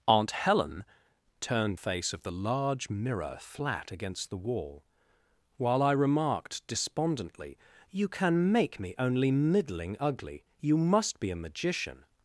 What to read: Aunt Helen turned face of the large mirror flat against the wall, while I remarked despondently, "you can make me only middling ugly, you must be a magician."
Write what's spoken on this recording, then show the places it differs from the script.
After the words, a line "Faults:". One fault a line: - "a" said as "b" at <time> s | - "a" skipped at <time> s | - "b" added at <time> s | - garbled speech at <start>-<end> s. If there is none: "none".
Aunt Helen turned face of the large mirror flat against the wall, while I remarked despondently, "you can make me only middling ugly, you must be a magician."
Faults:
none